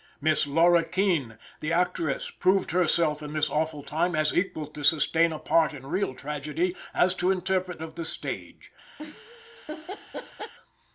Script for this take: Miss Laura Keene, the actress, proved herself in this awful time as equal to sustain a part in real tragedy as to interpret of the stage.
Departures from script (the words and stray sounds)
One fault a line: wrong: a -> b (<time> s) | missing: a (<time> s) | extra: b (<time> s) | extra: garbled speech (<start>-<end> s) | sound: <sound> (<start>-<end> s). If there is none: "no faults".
sound: laugh (9.0-10.5 s)